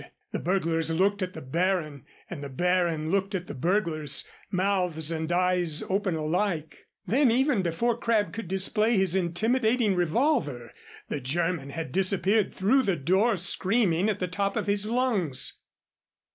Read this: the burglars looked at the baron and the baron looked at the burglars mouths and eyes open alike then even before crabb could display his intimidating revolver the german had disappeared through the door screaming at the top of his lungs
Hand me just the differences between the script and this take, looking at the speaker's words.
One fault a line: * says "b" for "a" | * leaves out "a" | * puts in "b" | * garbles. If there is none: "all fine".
all fine